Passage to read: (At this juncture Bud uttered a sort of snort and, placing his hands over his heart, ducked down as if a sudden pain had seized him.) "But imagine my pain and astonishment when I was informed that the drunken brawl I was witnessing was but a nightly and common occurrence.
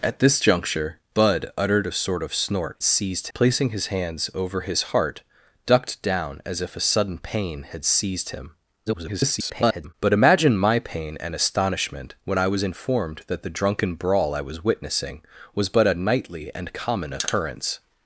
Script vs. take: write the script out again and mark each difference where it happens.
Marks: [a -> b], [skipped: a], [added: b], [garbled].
(At this juncture Bud uttered a sort of snort [and, -> seized] placing his hands over his heart, ducked down as if a sudden pain had seized him.) [garbled] "But imagine my pain and astonishment when I was informed that the drunken brawl I was witnessing was but a nightly and common occurrence.